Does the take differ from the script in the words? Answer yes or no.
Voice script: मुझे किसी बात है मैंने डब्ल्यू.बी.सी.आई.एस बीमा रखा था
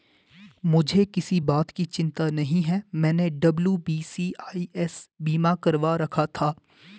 yes